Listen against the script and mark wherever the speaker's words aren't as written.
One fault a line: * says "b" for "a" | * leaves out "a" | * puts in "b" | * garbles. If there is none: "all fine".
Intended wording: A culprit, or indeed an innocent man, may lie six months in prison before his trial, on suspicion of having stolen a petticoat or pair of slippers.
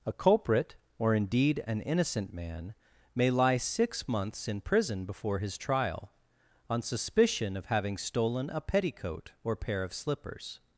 all fine